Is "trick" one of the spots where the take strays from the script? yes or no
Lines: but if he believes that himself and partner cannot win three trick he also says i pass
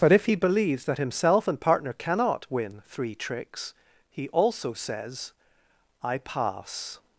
yes